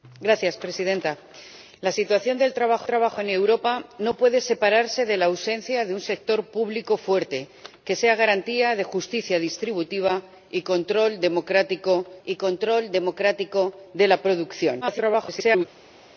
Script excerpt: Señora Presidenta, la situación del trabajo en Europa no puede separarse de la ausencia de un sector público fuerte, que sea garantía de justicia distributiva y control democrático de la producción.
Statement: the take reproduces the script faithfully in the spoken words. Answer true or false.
false